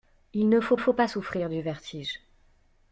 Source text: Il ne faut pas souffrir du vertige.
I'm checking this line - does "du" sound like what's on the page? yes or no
yes